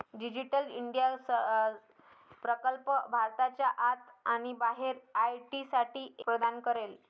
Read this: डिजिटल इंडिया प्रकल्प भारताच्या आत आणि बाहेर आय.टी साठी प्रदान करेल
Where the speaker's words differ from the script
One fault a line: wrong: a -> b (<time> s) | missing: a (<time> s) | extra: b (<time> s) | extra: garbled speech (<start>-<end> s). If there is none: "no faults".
no faults